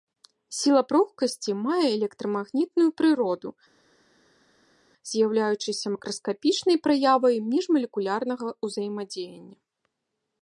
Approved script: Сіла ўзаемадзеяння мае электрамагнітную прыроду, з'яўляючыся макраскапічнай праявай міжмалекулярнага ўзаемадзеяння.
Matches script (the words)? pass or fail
fail